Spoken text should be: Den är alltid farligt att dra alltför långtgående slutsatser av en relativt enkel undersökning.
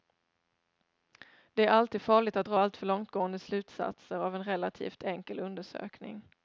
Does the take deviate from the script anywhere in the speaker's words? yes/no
yes